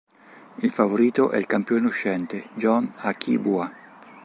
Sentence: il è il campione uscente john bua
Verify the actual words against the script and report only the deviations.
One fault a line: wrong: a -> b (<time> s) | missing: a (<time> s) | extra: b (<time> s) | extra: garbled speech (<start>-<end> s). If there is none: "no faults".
extra: favorito (0.7 s)
extra: akii (3.0 s)